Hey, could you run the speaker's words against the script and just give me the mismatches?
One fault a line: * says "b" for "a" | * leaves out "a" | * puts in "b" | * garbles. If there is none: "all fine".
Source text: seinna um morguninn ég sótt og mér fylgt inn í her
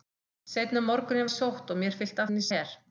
all fine